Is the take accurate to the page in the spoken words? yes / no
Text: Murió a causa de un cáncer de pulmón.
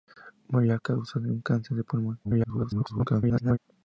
no